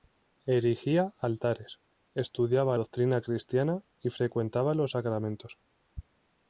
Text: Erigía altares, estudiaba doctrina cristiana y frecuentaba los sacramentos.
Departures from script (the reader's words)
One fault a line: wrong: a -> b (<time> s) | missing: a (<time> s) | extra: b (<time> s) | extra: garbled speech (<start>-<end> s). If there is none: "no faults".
no faults